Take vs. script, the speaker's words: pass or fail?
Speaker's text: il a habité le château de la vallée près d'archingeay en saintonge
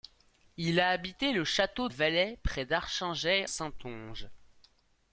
fail